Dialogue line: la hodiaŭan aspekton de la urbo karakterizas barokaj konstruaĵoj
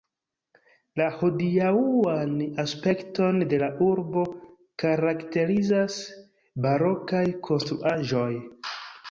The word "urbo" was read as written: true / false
true